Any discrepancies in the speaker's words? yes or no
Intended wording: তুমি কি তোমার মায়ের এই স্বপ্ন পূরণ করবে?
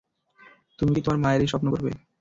yes